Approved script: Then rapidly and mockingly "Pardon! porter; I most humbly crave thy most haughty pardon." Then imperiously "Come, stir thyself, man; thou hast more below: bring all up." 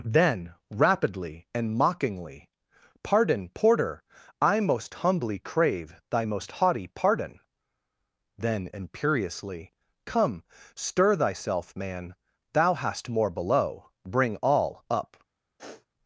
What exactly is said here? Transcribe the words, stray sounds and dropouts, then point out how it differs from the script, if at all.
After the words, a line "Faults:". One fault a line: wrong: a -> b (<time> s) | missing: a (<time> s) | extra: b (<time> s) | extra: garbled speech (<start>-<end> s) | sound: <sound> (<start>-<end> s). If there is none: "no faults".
Then rapidly and mockingly "Pardon! porter; I most humbly crave thy most haughty pardon." Then imperiously "Come, stir thyself, man; thou hast more below: bring all up."
Faults:
sound: sniff (15.6-15.9 s)